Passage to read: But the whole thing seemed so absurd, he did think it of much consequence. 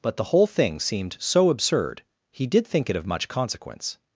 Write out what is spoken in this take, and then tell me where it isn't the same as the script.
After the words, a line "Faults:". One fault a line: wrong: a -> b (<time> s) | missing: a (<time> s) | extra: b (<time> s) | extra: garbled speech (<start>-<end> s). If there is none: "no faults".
But the whole thing seemed so absurd, he did think it of much consequence.
Faults:
no faults